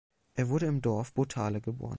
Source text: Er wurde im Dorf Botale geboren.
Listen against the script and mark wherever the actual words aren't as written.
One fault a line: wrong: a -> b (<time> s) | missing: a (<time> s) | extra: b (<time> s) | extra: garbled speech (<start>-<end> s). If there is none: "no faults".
no faults